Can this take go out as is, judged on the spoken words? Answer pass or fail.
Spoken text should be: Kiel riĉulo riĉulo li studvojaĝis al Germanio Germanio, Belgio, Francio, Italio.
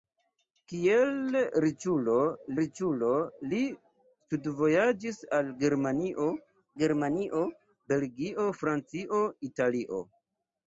pass